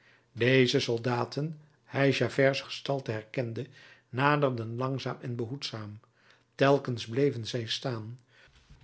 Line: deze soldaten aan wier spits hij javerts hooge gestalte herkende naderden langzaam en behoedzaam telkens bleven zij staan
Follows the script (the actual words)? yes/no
no